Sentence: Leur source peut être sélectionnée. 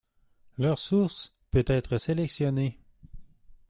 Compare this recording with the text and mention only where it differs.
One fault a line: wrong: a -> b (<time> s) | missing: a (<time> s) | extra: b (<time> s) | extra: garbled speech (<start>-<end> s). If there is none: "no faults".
no faults